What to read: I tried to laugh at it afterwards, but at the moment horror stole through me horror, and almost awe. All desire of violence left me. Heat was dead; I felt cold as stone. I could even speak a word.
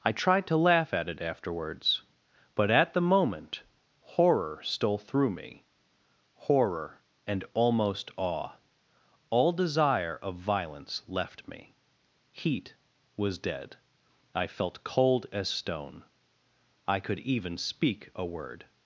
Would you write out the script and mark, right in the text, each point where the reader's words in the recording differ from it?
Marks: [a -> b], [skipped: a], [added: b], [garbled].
I tried to laugh at it afterwards, but at the moment horror stole through me horror, and almost awe. All desire of violence left me. Heat was dead; I felt cold as stone. I could even speak a word.